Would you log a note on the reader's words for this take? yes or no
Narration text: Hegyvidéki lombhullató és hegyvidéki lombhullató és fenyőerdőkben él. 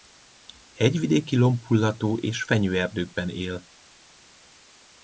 yes